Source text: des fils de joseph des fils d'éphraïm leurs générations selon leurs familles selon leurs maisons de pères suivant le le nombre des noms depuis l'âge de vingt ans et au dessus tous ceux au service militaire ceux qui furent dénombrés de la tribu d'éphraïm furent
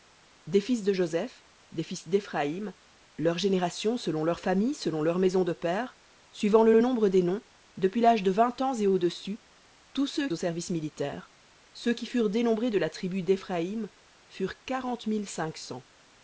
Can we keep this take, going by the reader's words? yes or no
yes